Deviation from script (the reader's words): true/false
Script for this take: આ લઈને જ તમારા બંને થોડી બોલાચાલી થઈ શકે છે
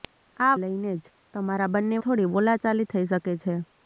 false